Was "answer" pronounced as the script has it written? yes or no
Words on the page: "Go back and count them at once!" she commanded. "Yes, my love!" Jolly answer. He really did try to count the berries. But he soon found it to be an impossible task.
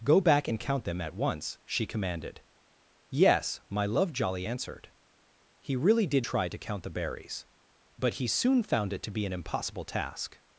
no